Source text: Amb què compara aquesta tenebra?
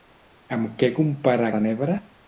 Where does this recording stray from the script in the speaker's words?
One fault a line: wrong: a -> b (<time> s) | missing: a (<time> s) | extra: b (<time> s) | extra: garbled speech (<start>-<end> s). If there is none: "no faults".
missing: aquesta (1.5 s)